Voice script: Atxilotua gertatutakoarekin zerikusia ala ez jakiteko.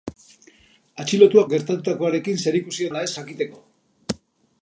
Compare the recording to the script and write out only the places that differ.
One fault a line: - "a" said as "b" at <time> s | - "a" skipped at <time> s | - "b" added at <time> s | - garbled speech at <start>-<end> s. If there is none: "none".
none